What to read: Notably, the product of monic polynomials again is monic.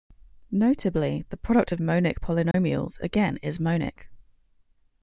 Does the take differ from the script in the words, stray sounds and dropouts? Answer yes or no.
yes